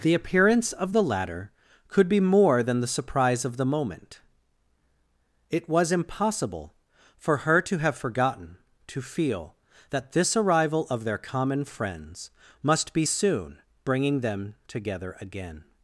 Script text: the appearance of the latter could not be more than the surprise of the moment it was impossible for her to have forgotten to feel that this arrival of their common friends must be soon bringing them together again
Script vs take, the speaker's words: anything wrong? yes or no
yes